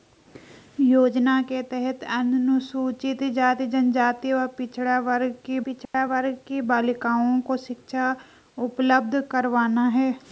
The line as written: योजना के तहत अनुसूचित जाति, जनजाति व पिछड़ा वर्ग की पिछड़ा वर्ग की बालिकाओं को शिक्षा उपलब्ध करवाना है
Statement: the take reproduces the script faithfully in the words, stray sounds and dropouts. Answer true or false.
false